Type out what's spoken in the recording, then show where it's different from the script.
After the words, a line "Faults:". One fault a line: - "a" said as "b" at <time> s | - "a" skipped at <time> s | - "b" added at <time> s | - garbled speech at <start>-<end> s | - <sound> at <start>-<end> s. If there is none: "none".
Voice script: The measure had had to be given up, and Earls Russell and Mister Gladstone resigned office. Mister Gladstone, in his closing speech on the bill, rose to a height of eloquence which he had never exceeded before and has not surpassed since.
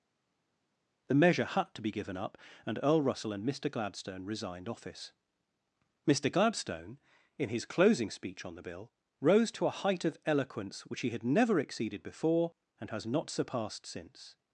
The measure had to be given up, and Earl Russell and Mister Gladstone resigned office. Mister Gladstone, in his closing speech on the bill, rose to a height of eloquence which he had never exceeded before and has not surpassed since.
Faults:
- "had" skipped at 1.7 s
- "Earls" said as "Earl" at 2.8 s